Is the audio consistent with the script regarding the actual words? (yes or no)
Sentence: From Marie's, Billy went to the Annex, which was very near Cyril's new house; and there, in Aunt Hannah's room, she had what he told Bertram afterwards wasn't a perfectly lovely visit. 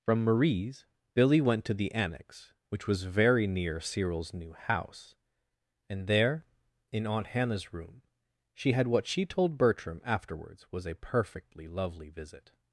no